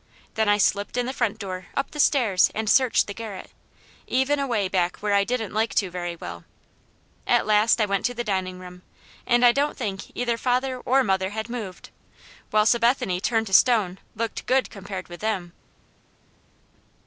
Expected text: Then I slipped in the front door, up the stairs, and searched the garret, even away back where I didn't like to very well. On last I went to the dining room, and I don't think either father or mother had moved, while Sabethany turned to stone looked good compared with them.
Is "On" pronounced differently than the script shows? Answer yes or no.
yes